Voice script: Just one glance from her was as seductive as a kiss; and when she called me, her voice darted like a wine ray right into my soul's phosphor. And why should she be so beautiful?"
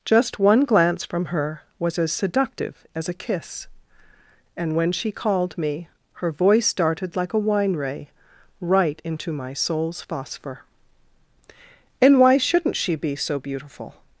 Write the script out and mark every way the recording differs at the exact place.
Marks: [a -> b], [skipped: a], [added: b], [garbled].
Just one glance from her was as seductive as a kiss; and when she called me, her voice darted like a wine ray right into my soul's phosphor. And why [should -> shouldn't] she be so beautiful?"